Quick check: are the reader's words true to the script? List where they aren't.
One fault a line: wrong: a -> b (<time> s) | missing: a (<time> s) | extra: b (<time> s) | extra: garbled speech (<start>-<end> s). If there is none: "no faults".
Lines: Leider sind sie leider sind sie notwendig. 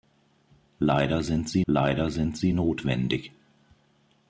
no faults